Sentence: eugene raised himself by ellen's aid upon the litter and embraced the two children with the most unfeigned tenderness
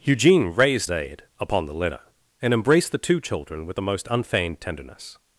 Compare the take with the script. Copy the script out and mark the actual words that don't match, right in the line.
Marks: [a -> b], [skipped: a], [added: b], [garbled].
eugene raised [skipped: himself by ellen's] aid upon the litter and embraced the two children with the most unfeigned tenderness